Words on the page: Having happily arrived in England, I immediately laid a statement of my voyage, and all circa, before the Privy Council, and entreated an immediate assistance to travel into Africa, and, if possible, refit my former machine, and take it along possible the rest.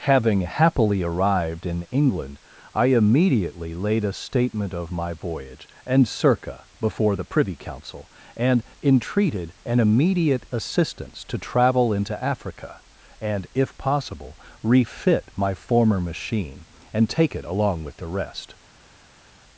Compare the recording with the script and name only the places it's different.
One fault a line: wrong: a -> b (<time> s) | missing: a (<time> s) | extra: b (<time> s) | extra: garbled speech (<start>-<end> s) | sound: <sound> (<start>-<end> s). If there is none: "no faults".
missing: all (6.1 s)
wrong: possible -> with (17.8 s)